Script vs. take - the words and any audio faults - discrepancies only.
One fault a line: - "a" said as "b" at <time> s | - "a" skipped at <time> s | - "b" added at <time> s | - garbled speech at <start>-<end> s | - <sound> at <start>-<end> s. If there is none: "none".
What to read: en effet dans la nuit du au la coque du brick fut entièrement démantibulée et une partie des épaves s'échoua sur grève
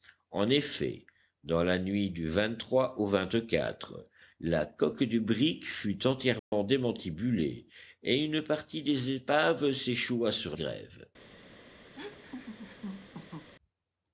- dropout at 6.4-6.5 s
- laugh at 11.9-13.5 s